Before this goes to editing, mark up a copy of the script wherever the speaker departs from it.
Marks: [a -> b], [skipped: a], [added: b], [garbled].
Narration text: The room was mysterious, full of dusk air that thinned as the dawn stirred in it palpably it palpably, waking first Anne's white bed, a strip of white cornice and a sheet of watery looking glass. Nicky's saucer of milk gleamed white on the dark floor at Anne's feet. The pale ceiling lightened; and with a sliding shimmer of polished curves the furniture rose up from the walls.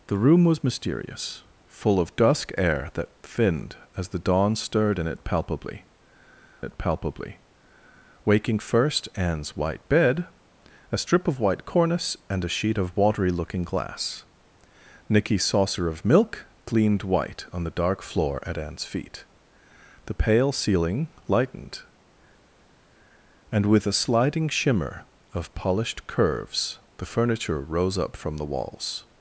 The room was mysterious, full of dusk air that thinned as the dawn stirred in it palpably it palpably, waking first Anne's white bed, a strip of white cornice and a sheet of watery looking glass. Nicky's saucer of milk gleamed white on the dark floor at Anne's feet. The pale ceiling lightened; and with a sliding shimmer of polished curves the furniture rose up from the walls.